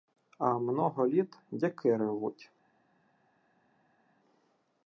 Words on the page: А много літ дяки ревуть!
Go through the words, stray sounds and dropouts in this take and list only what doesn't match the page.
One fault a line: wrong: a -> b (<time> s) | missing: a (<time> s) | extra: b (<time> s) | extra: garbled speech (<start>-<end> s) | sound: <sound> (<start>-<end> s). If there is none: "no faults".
no faults